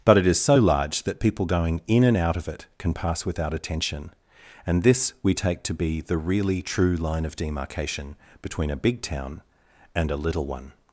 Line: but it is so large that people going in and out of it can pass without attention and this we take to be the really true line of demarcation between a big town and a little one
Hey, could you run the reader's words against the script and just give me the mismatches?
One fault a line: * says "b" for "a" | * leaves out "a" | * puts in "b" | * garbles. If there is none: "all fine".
all fine